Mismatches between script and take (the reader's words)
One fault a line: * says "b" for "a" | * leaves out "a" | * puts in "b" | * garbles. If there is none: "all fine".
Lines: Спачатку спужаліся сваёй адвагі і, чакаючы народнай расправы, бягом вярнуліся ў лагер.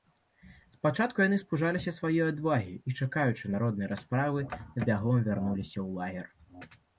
* puts in "яны"